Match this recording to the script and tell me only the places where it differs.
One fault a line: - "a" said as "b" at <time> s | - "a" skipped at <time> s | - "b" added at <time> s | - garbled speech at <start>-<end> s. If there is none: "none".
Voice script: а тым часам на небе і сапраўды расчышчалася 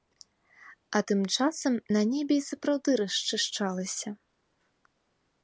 none